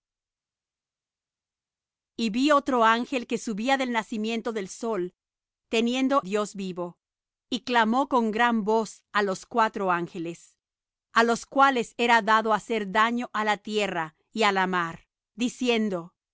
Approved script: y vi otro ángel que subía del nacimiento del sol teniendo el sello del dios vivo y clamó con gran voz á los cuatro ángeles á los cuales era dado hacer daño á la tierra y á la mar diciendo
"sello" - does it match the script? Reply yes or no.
no